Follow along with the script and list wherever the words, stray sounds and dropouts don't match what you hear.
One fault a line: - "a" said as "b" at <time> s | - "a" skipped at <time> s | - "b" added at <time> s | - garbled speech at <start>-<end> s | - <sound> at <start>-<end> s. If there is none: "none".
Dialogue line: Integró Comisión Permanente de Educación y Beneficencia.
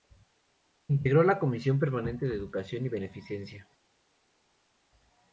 - "la" added at 1.2 s